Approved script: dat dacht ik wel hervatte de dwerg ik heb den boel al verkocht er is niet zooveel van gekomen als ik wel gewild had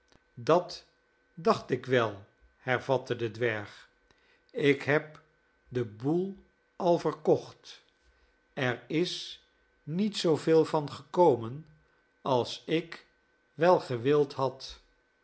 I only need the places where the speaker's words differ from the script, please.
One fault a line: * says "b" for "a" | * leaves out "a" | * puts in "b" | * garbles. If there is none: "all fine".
all fine